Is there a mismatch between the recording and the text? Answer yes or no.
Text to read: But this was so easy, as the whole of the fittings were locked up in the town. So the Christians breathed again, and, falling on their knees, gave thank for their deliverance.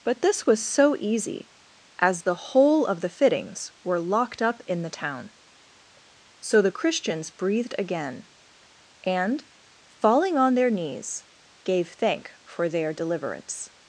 no